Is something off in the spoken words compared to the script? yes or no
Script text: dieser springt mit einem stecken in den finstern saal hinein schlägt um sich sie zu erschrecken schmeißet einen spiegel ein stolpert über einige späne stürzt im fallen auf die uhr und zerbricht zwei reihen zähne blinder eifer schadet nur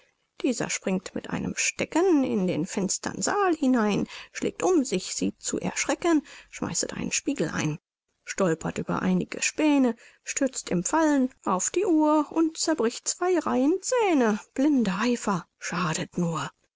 no